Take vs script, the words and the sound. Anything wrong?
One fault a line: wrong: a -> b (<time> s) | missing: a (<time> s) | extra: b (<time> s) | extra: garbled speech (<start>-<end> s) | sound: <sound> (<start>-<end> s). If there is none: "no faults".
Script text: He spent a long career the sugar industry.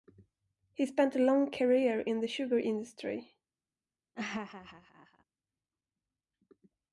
extra: in (2.0 s)
sound: laugh (4.2-5.2 s)